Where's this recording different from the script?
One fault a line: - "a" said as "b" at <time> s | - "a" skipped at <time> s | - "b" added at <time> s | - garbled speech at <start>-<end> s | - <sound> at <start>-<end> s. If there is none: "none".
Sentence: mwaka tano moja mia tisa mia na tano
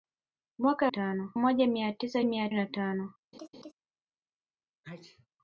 - laugh at 3.3-3.7 s
- sneeze at 4.8-5.3 s